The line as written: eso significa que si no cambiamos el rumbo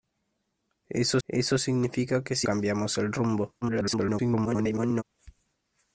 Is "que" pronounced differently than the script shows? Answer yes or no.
no